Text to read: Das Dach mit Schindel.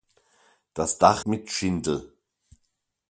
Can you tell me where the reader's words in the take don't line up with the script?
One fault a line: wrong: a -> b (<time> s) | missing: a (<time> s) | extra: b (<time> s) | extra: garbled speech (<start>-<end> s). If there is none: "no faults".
no faults